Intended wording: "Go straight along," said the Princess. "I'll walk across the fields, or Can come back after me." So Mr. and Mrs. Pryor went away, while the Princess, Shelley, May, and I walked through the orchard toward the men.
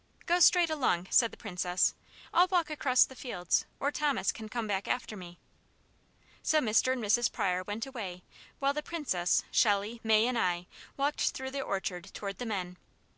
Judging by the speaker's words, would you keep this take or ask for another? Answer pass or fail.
fail